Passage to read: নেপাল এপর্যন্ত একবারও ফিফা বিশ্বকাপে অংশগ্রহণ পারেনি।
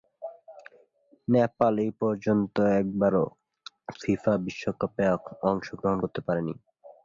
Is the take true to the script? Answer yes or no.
no